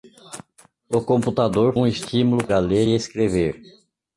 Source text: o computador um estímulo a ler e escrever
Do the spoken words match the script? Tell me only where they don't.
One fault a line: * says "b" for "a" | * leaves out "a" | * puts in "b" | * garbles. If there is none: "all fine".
all fine